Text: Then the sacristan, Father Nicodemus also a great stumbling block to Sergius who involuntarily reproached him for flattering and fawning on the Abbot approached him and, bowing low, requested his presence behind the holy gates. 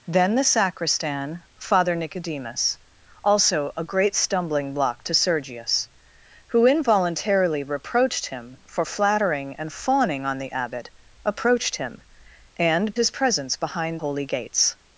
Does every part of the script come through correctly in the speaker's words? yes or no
no